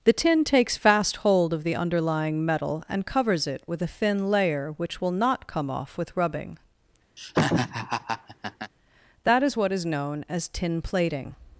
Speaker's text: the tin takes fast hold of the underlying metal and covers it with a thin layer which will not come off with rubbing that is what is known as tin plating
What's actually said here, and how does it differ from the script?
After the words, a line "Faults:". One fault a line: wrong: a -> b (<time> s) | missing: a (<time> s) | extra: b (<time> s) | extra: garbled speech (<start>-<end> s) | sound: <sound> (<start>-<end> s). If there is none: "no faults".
the tin takes fast hold of the underlying metal and covers it with a thin layer which will not come off with rubbing that is what is known as tin plating
Faults:
sound: laugh (7.2-8.7 s)